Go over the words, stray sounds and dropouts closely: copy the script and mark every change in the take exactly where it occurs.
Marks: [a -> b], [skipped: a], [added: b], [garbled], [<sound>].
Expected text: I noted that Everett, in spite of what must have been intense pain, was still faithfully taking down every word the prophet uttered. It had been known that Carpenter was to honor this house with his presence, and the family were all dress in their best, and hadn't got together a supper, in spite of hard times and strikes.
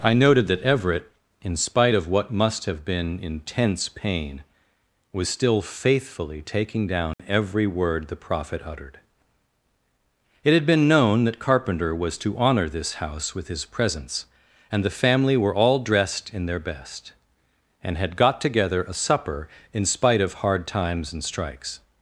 I noted that Everett, in spite of what must have been intense pain, was still faithfully taking down [dropout] every word the prophet uttered. It had been known that Carpenter was to honor this house with his presence, and the family were all [dress -> dressed] in their best, and [hadn't -> had] got together a supper, in spite of hard times and strikes.